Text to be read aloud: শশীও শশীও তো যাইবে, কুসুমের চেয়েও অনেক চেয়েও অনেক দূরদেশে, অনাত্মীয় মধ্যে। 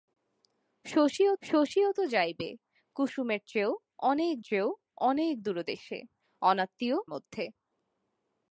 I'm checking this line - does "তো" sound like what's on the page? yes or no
yes